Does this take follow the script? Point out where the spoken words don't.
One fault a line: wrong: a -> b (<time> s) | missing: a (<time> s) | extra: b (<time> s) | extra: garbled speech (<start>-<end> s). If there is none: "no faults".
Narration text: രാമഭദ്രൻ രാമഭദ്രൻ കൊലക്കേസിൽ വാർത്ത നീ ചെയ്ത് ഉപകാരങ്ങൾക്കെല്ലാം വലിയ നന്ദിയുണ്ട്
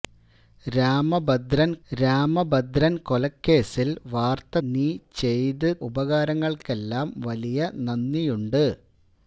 no faults